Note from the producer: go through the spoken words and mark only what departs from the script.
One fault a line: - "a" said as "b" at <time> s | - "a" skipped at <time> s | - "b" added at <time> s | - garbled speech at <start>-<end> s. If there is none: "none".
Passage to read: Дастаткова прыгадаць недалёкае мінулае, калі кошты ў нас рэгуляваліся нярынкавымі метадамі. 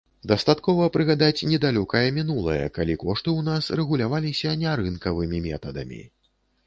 none